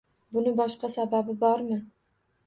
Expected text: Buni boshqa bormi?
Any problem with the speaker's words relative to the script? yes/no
yes